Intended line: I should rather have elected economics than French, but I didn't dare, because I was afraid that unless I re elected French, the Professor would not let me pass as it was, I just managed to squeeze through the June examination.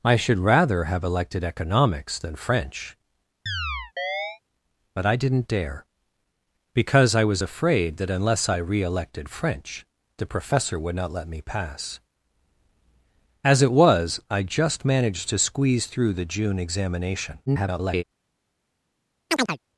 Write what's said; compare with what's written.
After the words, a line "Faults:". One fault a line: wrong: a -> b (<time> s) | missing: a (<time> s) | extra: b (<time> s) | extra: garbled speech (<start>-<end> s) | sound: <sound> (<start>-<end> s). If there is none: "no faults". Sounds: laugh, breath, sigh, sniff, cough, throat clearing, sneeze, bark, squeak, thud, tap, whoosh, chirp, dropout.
I should rather have elected economics than French, but I didn't dare, because I was afraid that unless I re elected French, the Professor would not let me pass as it was, I just managed to squeeze through the June examination. [garbled]
Faults:
sound: chirp (3.5-4.4 s)
extra: garbled speech (17.5-18.0 s)
sound: chirp (19.3-19.6 s)